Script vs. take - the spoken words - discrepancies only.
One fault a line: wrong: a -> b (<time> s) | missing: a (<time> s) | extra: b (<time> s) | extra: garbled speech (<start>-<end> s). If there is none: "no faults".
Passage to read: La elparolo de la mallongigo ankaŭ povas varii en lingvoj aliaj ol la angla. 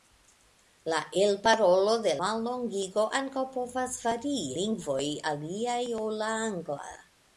missing: la (2.1 s)
missing: en (4.4 s)